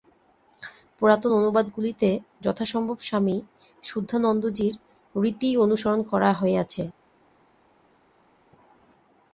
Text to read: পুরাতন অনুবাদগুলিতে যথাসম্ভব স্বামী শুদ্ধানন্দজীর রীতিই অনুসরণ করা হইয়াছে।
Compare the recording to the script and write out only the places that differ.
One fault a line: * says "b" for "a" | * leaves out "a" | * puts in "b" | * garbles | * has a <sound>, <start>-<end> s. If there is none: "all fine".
all fine